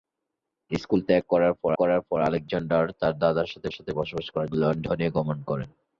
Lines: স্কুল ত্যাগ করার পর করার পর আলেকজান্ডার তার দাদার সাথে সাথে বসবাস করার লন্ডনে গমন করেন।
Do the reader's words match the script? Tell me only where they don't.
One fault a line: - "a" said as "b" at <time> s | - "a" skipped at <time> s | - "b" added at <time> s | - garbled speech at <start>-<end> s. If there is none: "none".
none